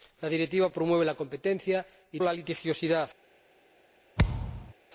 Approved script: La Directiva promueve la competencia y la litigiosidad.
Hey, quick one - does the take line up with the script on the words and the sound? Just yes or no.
no